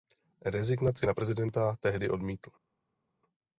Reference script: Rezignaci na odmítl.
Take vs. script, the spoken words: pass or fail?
fail